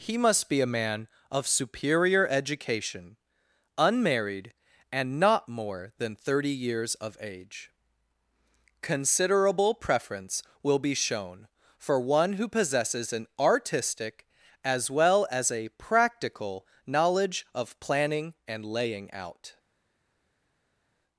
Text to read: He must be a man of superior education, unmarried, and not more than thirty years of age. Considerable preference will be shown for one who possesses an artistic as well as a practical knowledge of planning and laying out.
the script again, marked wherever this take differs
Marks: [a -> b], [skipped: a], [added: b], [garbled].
He must be a man of superior education, unmarried, and not more than thirty years of age. Considerable preference will be shown for one who possesses an artistic as well as a practical knowledge of planning and laying out.